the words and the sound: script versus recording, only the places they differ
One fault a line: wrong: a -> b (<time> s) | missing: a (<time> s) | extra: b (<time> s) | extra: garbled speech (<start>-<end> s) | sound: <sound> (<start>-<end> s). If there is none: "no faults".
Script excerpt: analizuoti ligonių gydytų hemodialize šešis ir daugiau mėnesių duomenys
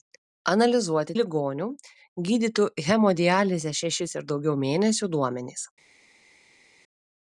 no faults